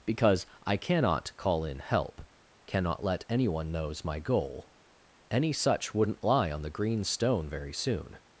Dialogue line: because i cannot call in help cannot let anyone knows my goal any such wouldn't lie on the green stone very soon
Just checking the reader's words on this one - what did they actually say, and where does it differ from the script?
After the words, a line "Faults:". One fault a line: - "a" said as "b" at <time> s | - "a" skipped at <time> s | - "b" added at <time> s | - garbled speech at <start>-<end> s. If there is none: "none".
because i cannot call in help cannot let anyone knows my goal any such wouldn't lie on the green stone very soon
Faults:
none